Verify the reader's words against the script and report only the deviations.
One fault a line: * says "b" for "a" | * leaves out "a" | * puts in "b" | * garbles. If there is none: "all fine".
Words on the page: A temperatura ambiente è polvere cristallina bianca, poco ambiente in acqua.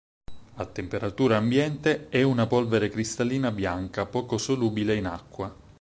* puts in "una"
* says "solubile" for "ambiente"